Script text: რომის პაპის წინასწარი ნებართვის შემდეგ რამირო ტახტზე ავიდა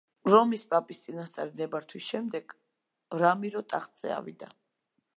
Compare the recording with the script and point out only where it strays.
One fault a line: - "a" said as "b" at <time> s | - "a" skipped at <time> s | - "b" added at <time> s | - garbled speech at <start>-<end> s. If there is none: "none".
none